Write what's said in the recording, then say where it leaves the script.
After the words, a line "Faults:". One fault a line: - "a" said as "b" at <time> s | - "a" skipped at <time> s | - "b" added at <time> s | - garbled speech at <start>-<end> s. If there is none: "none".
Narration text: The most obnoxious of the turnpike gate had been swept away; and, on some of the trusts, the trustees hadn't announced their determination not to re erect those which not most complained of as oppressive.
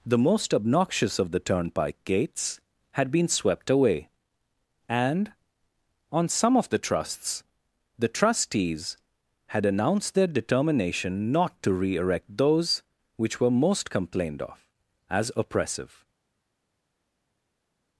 The most obnoxious of the turnpike gates had been swept away; and, on some of the trusts, the trustees had announced their determination not to re erect those which were most complained of as oppressive.
Faults:
- "gate" said as "gates" at 2.0 s
- "hadn't" said as "had" at 9.5 s
- "not" said as "were" at 13.4 s